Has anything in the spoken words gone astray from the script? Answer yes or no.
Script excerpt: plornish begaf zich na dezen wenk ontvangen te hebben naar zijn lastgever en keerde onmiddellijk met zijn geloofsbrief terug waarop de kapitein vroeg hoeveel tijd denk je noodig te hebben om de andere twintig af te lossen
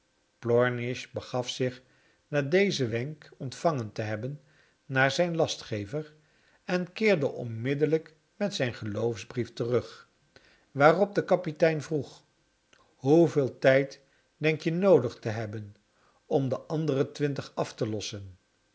no